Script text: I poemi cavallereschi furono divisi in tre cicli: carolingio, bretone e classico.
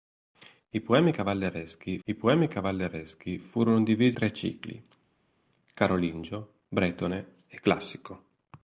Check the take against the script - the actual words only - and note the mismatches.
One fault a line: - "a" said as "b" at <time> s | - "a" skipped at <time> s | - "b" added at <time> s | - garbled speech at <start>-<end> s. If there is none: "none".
- "I poemi cavallereschi" added at 2.0 s
- "in" skipped at 4.2 s